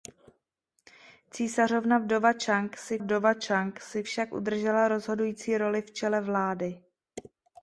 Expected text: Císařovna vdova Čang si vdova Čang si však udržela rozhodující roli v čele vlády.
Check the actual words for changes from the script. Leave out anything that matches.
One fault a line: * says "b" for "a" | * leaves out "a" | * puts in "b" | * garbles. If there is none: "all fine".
all fine